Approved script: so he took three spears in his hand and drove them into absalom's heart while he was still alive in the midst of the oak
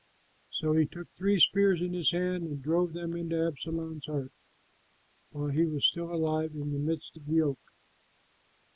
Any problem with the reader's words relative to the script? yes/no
no